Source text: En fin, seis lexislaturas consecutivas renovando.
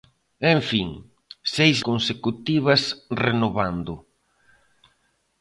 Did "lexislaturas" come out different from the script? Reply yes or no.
yes